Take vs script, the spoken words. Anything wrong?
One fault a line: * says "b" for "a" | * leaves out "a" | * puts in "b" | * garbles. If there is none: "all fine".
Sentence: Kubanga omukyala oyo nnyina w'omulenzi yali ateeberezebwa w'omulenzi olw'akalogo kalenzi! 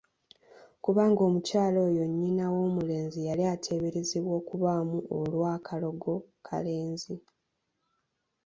* says "okubaamu" for "w'omulenzi"